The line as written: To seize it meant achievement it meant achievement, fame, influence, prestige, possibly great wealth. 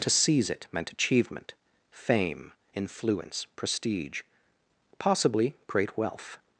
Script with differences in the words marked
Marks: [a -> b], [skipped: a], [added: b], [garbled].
To seize it meant achievement [skipped: it meant achievement,] fame, influence, prestige, possibly great wealth.